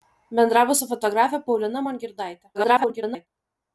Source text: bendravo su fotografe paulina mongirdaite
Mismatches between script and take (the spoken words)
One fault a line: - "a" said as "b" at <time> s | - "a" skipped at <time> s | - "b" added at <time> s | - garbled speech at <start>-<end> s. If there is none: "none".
- garbled speech at 2.5-3.3 s